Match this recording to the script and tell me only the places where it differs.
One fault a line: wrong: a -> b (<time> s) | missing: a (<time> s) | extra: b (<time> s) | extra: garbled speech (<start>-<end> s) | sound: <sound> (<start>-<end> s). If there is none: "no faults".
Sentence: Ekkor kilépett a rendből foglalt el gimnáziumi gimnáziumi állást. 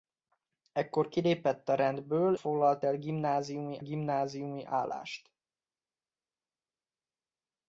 no faults